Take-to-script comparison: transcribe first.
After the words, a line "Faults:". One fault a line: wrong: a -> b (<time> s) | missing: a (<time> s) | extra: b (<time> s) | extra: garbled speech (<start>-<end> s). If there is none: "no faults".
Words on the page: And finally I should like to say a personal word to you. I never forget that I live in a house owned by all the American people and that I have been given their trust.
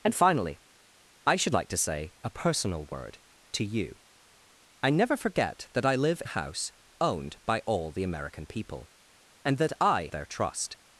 And finally I should like to say a personal word to you. I never forget that I live a house owned by all the American people and that I their trust.
Faults:
missing: in (6.2 s)
missing: have been given (10.1 s)